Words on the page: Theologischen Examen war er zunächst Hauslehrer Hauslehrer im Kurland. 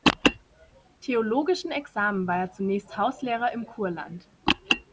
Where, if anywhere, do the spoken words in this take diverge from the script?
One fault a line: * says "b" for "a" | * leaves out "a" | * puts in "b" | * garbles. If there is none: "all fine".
* leaves out "Hauslehrer"